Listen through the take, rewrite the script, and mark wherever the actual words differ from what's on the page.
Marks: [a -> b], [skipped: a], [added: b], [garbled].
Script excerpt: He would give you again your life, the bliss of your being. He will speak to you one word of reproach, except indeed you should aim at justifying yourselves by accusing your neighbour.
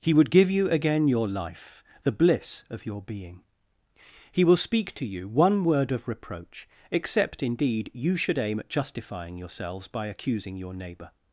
He would give you again your life, the bliss of your being. He will speak to you one word of reproach, except indeed you should aim at justifying yourselves by accusing your neighbour.